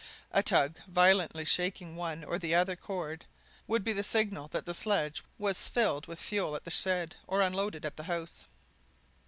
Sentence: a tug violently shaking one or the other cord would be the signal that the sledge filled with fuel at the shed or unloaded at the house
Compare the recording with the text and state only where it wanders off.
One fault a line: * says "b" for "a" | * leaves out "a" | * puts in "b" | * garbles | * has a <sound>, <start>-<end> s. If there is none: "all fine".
* puts in "was"